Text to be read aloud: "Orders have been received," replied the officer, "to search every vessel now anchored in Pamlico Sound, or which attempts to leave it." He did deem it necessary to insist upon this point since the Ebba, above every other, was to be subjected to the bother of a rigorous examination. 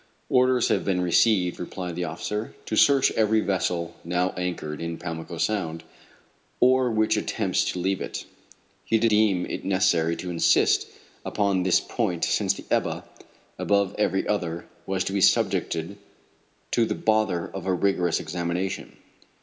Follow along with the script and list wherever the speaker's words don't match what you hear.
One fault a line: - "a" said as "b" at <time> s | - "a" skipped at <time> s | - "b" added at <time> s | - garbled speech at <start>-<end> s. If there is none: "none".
none